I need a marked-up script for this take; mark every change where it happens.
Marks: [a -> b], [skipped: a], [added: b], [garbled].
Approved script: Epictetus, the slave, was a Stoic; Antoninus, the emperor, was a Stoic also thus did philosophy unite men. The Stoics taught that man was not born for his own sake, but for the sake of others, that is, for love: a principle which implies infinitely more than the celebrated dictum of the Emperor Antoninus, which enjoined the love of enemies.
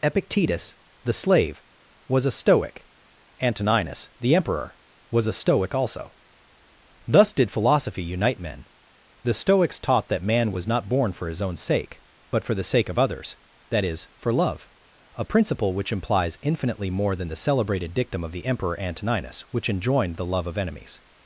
Epictetus, the slave, was a Stoic; Antoninus, the emperor, was a Stoic also thus did philosophy unite men. The Stoics taught that man was not born for his own sake, but for the sake of others, that is, for love: a principle which implies infinitely more than the celebrated dictum of the Emperor Antoninus, which enjoined the love of enemies.